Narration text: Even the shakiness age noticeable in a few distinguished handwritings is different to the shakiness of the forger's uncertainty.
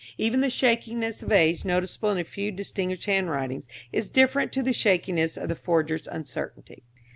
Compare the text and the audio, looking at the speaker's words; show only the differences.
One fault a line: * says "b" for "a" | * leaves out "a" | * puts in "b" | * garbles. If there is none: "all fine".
* puts in "of"